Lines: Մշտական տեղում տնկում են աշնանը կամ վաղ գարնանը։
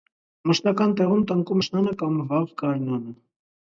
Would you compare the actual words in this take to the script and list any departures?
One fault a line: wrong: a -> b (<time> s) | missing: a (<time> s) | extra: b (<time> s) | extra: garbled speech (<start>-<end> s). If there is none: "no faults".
missing: են (1.6 s)